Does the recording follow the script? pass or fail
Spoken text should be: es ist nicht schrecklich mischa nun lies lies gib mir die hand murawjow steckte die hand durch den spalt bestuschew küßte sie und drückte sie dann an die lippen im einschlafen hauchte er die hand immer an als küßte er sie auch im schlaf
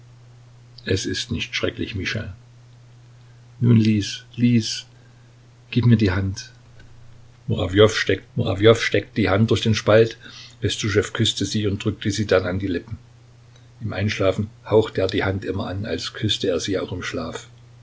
fail